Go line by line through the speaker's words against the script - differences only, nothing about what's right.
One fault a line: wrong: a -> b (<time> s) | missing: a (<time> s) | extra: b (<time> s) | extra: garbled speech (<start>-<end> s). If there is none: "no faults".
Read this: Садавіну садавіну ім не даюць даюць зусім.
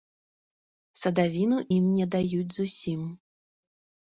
missing: садавіну (1.6 s)
missing: даюць (2.5 s)